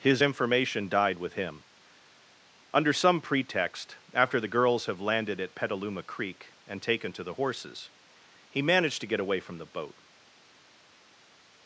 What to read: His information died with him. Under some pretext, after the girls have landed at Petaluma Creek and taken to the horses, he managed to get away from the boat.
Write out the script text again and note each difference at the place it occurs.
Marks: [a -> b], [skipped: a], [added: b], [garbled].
His information died with him. Under some pretext, after the girls have landed at Petaluma Creek and taken to the horses, he managed to get away from the boat.